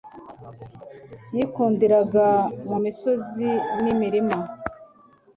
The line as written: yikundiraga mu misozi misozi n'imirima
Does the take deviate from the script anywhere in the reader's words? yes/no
yes